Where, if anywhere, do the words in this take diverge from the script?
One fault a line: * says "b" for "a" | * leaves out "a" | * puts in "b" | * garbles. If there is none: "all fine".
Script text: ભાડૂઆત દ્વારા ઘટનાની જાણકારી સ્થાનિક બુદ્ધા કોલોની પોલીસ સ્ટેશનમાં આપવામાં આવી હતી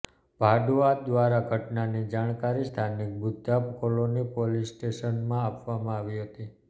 all fine